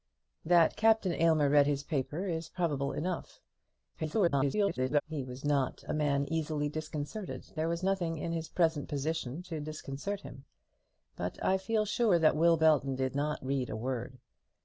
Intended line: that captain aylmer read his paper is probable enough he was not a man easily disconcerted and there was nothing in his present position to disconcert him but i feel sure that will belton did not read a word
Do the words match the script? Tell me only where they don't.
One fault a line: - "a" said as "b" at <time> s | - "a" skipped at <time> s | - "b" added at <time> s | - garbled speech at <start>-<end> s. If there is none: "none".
- garbled speech at 3.9-5.0 s
- "and" skipped at 7.5 s